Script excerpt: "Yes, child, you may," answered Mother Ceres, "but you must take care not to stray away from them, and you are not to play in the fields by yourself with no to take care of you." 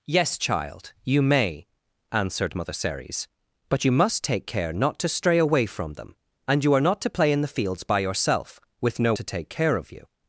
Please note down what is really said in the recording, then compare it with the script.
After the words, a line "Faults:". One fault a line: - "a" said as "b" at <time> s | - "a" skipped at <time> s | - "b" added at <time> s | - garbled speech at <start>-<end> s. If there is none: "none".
"Yes, child, you may," answered Mother Ceres, "but you must take care not to stray away from them, and you are not to play in the fields by yourself with no to take care of you."
Faults:
none